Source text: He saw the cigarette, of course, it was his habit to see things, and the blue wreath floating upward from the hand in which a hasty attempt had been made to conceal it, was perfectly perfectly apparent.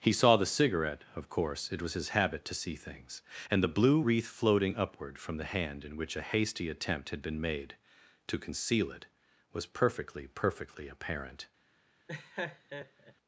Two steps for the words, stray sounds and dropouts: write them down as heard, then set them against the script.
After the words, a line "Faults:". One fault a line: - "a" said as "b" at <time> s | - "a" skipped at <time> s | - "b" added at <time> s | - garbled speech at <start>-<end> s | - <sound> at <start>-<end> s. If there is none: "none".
He saw the cigarette, of course, it was his habit to see things, and the blue wreath floating upward from the hand in which a hasty attempt had been made to conceal it, was perfectly perfectly apparent.
Faults:
- laugh at 12.1-13.1 s